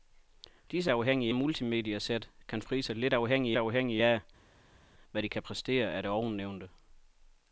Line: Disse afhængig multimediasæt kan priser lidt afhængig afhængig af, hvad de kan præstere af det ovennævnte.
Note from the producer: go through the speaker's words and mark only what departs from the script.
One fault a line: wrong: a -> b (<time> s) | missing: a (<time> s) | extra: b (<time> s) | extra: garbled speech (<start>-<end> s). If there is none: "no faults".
no faults